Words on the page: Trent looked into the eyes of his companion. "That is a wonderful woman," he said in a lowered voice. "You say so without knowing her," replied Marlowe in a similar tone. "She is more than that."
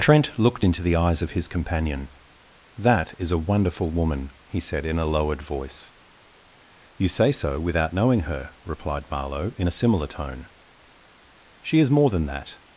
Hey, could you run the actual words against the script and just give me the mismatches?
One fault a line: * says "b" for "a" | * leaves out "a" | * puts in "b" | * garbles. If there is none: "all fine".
all fine